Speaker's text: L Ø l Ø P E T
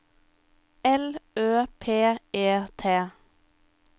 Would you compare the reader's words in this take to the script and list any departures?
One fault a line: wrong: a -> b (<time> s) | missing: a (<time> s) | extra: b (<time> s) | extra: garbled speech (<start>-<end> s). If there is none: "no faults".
missing: l Ø (1.6 s)